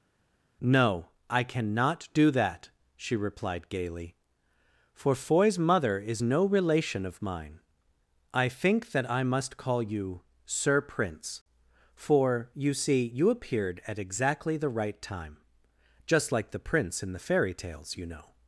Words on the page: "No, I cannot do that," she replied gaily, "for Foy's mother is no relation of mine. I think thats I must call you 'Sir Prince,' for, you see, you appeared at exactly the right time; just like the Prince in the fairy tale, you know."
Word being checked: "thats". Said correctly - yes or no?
no